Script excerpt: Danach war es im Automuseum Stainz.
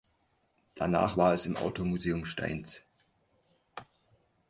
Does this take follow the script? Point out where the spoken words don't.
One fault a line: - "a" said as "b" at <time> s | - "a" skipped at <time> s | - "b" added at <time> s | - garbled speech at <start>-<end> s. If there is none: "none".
none